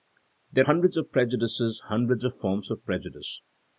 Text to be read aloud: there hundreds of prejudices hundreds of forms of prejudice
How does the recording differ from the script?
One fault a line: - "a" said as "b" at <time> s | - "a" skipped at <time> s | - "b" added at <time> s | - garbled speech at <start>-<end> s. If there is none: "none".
none